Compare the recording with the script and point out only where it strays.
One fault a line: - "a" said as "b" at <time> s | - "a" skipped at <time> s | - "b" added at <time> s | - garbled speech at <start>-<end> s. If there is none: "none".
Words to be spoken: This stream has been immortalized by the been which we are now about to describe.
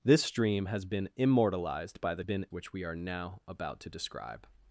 none